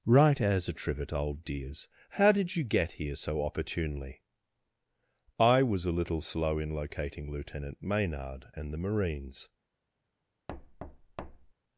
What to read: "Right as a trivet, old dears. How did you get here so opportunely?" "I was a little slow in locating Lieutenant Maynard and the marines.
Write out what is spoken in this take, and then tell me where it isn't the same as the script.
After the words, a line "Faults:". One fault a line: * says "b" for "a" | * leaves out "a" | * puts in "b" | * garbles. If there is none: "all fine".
"Right as a trivet, old dears. How did you get here so opportunely?" "I was a little slow in locating Lieutenant Maynard and the marines.
Faults:
all fine